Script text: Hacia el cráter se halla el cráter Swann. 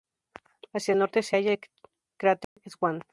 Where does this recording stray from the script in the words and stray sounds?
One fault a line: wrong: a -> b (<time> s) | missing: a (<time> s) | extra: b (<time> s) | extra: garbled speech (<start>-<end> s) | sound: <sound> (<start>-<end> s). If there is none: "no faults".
wrong: cráter -> norte (1.0 s)
sound: dropout (2.4-2.6 s)